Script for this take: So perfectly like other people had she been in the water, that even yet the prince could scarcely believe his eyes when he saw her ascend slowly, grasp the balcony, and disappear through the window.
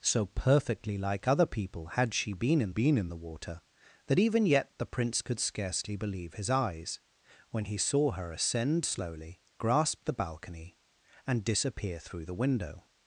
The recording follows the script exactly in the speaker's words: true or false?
false